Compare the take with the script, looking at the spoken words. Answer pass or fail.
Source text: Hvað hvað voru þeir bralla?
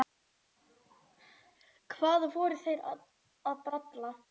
fail